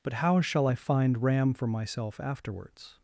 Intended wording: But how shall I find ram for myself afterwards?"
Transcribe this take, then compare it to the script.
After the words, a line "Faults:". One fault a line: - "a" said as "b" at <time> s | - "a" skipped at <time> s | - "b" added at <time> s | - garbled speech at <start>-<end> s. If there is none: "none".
But how shall I find ram for myself afterwards?"
Faults:
none